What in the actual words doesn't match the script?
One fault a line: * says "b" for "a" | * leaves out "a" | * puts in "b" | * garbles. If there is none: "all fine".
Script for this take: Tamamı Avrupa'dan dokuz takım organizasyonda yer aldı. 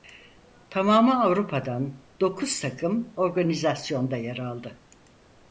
all fine